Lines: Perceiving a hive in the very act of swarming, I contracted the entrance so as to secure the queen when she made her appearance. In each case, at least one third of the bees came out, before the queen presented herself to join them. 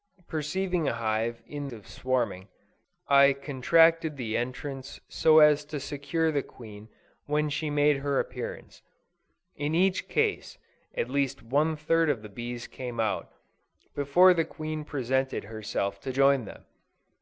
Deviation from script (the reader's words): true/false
true